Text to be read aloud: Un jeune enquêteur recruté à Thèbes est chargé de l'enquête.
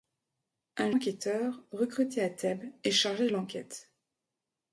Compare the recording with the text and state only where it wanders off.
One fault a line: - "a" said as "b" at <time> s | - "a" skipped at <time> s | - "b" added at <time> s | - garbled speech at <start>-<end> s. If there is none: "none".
- "jeune" skipped at 0.9 s